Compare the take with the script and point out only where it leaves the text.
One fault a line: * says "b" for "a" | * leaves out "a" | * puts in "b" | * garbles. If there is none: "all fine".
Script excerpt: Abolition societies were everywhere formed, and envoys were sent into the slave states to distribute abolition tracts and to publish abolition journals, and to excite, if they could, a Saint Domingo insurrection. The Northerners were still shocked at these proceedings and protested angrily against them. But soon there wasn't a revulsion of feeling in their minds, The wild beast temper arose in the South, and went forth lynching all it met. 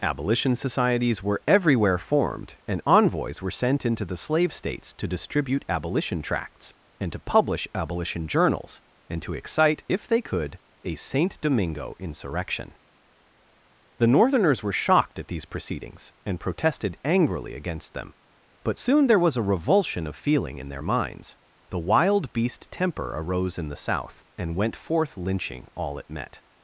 * leaves out "still"
* says "was" for "wasn't"